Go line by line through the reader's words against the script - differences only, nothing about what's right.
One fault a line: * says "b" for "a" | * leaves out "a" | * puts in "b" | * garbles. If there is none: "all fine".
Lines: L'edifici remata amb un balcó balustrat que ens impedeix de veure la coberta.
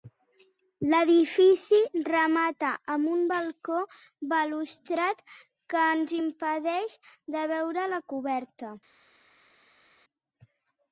all fine